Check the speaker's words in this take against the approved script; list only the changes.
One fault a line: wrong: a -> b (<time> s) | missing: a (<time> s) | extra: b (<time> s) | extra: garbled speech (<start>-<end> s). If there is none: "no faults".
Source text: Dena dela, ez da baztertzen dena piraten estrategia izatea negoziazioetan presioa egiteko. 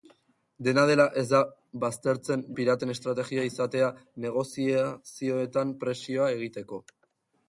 missing: dena (2.5 s)